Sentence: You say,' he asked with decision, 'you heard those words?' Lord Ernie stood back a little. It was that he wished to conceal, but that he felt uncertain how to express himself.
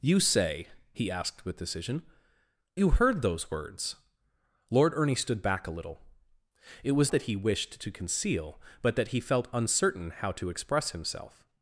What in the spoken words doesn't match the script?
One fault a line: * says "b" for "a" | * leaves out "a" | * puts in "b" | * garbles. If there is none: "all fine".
all fine